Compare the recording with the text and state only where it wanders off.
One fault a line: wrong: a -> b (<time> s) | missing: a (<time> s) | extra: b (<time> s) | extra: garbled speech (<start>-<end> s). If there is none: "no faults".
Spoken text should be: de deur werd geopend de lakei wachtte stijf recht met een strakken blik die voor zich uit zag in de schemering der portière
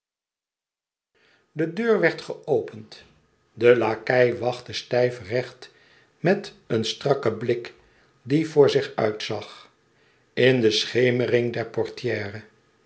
no faults